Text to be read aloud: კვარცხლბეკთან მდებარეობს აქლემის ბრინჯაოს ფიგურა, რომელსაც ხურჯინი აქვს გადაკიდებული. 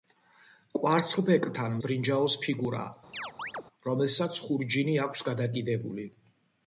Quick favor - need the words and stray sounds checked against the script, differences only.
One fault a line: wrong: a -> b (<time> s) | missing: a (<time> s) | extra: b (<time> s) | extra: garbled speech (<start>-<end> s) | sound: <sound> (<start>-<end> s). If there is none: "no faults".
missing: მდებარეობს აქლემის (1.8 s)
sound: chirp (3.1-3.6 s)